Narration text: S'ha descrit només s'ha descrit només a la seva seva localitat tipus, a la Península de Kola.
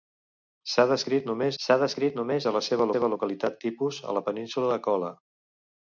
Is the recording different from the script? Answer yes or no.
no